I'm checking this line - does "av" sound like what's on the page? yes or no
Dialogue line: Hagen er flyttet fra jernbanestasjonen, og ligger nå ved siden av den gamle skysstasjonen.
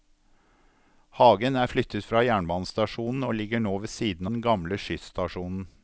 no